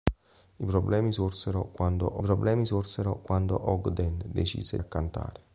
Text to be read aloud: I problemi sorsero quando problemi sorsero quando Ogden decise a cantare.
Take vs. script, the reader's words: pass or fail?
pass